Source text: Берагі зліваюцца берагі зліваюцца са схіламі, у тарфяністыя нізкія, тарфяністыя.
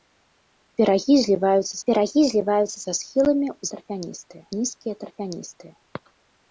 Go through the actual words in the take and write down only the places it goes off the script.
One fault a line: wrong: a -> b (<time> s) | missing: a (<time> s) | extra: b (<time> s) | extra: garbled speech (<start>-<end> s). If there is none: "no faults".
no faults